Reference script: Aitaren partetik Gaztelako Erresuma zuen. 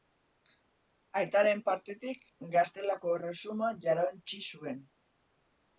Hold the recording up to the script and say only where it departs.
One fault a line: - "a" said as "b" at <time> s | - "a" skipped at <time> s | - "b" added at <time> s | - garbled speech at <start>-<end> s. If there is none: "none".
- "jarauntsi" added at 3.9 s